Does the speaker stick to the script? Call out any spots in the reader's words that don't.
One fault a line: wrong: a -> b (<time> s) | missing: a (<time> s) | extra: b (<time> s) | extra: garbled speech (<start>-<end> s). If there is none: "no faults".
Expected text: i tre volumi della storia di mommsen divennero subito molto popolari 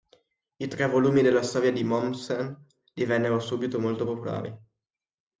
no faults